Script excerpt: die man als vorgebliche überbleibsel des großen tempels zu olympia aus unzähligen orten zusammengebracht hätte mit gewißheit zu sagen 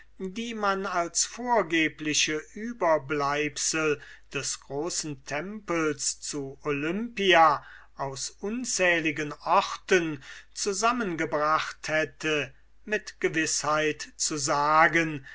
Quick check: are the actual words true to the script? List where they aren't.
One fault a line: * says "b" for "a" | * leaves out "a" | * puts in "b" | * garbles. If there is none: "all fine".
all fine